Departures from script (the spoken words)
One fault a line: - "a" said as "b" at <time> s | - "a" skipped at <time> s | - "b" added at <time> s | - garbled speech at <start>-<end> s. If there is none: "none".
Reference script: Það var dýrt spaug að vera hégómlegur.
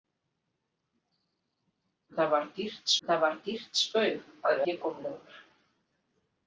- "það var dýrt" added at 3.1 s
- "vera" skipped at 4.6 s